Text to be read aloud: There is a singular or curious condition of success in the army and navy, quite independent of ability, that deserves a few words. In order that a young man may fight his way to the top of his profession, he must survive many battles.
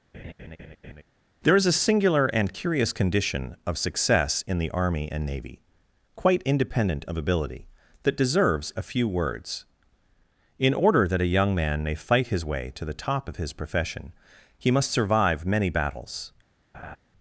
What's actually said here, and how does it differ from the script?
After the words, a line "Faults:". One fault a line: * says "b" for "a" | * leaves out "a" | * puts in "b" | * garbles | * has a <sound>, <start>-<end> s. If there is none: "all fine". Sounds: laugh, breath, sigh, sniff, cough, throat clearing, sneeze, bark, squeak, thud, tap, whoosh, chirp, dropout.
There is a singular and curious condition of success in the army and navy, quite independent of ability, that deserves a few words. In order that a young man may fight his way to the top of his profession, he must survive many battles.
Faults:
* has a laugh, 0.1-1.0 s
* says "and" for "or"
* has a laugh, 16.7-17.0 s